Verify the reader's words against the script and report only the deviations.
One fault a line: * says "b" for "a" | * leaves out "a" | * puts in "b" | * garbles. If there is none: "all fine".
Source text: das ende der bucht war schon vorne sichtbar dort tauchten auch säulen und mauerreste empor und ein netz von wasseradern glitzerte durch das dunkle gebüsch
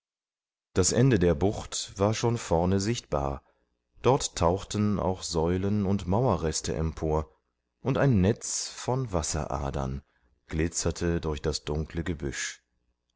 all fine